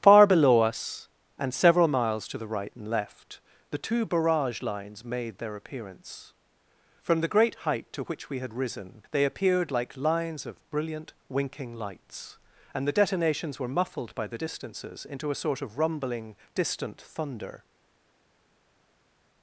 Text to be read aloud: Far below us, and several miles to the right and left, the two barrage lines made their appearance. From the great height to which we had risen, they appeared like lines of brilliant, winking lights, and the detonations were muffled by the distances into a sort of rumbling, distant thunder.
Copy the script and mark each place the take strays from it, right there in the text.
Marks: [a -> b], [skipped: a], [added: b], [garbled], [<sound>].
Far below us, and several miles to the right and left, the two barrage lines made their appearance. From the great height to which we had risen, they appeared like lines of brilliant, winking lights, and the detonations were muffled by the distances into a sort of rumbling, distant thunder.